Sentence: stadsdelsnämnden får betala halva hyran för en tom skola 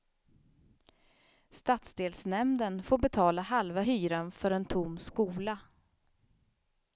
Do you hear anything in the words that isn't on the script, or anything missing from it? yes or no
no